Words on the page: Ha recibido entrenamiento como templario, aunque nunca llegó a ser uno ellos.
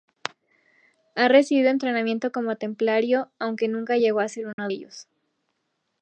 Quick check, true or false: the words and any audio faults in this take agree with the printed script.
false